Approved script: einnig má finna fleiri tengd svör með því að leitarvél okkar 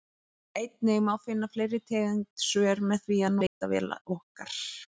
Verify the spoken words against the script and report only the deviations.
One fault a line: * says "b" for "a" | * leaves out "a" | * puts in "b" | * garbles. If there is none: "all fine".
all fine